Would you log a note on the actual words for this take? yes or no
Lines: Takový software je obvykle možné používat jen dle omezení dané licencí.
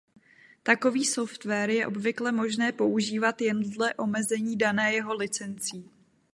yes